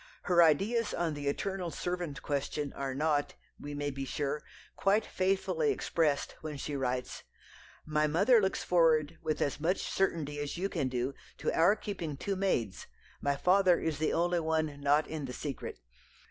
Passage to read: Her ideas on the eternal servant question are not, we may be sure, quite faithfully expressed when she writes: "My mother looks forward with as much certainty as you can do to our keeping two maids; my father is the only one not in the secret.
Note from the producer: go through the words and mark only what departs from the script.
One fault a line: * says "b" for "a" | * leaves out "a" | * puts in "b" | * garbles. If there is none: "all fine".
all fine